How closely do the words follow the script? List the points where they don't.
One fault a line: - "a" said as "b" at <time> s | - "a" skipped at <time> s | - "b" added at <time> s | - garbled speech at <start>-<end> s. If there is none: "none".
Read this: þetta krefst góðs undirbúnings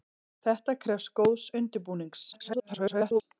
- garbled speech at 2.3-3.2 s